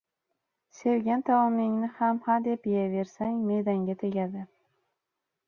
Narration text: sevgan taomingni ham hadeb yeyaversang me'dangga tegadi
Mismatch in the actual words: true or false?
false